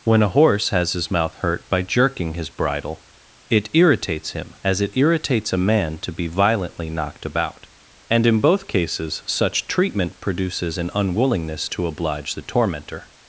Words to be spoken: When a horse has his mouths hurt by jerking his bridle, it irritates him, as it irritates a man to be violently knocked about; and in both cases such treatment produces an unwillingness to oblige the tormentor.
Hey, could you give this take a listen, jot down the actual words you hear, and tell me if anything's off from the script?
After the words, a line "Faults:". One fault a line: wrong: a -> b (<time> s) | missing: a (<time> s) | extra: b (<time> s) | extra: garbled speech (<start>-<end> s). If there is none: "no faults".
When a horse has his mouth hurt by jerking his bridle, it irritates him, as it irritates a man to be violently knocked about; and in both cases such treatment produces an unwillingness to oblige the tormentor.
Faults:
wrong: mouths -> mouth (1.1 s)